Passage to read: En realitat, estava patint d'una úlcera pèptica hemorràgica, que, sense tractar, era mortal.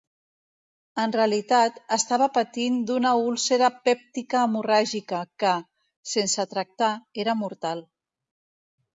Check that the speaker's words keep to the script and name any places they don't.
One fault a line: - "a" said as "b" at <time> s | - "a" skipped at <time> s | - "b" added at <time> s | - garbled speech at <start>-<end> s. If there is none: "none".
none